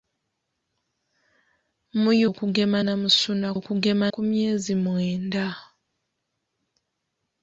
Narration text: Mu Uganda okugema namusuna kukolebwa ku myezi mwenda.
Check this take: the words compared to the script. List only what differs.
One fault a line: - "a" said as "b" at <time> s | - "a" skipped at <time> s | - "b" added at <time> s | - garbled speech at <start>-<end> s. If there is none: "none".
- "Uganda" skipped at 2.1 s
- "kukolebwa" said as "okugema" at 3.6 s